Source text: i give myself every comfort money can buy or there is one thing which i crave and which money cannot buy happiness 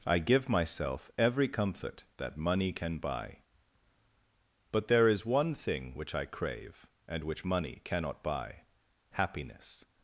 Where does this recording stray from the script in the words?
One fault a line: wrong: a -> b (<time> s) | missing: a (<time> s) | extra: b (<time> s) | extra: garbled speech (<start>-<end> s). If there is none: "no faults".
extra: that (2.2 s)
wrong: or -> but (4.7 s)